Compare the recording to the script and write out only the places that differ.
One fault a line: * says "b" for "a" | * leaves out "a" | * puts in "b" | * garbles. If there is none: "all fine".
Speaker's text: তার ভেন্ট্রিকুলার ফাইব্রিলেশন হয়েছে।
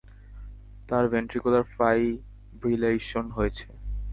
all fine